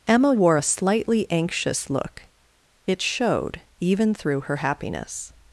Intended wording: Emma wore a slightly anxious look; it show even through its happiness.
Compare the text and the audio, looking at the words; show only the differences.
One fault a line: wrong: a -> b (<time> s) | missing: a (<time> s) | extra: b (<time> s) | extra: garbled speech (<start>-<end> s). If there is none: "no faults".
wrong: show -> showed (3.0 s)
wrong: its -> her (4.4 s)